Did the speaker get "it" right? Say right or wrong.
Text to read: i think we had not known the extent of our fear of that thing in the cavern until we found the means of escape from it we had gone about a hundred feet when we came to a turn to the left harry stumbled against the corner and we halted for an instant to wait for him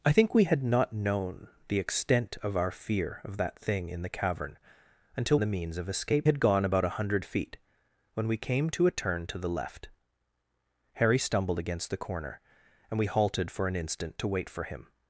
wrong